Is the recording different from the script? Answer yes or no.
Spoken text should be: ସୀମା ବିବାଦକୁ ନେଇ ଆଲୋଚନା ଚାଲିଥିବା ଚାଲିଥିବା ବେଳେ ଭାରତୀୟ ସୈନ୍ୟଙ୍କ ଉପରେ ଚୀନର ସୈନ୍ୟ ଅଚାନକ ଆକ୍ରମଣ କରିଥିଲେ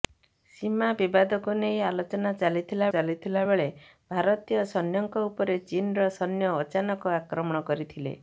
no